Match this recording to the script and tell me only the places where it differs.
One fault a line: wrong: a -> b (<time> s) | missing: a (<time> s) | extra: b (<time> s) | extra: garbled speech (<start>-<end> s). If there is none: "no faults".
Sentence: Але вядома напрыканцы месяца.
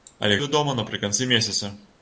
no faults